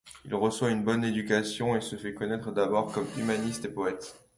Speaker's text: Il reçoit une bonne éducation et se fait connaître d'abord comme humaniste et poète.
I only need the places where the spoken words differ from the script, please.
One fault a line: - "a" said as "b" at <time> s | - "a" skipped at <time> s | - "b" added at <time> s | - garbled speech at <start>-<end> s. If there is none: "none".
none